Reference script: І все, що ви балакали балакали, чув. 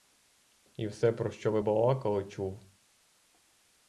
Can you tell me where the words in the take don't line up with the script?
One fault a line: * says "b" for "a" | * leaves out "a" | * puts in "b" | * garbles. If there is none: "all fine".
* puts in "про"
* leaves out "балакали"